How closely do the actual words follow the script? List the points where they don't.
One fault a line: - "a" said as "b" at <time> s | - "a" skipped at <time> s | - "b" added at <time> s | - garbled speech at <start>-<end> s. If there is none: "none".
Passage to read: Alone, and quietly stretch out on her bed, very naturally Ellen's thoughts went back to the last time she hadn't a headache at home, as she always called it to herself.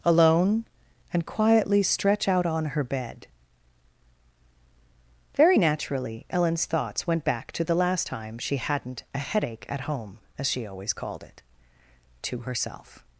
none